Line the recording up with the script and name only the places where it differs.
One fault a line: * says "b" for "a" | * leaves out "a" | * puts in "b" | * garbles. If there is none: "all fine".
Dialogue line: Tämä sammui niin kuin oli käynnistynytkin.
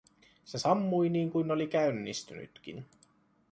* says "Se" for "Tämä"